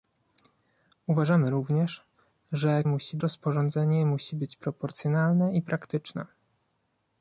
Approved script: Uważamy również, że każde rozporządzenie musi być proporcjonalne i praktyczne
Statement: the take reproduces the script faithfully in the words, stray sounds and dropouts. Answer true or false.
false